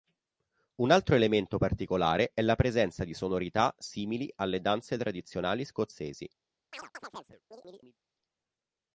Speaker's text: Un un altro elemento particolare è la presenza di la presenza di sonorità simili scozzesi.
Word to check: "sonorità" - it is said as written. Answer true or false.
false